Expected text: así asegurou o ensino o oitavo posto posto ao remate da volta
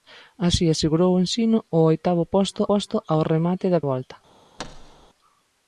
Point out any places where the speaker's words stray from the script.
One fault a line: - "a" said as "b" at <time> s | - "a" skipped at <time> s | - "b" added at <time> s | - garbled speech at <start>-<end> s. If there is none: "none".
none